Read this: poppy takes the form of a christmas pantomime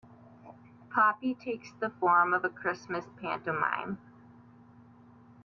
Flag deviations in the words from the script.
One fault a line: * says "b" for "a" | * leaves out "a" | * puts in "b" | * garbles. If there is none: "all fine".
all fine